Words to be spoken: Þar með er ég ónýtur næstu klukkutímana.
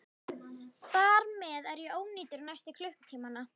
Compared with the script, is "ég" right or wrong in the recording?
right